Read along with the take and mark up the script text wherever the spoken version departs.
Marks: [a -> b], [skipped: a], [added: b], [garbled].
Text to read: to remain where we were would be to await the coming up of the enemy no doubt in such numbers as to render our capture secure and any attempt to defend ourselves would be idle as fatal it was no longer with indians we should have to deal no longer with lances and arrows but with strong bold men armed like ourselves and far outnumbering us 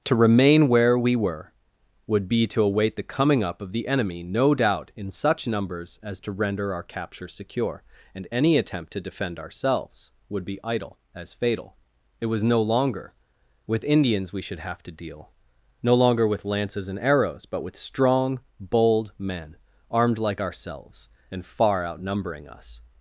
to remain where we were would be to await the coming up of the enemy no doubt in such numbers as to render our capture secure and any attempt to defend ourselves would be idle as fatal it was no longer with indians we should have to deal no longer with lances and arrows but with strong bold men armed like ourselves and far outnumbering us